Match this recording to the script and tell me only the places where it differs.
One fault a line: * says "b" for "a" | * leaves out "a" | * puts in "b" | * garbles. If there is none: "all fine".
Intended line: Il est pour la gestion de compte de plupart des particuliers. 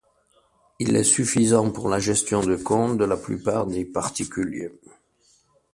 * puts in "suffisant"
* puts in "la"